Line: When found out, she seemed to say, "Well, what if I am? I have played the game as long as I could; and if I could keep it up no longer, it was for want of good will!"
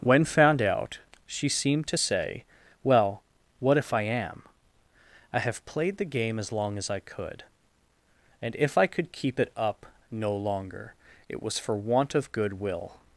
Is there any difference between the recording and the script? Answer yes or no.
no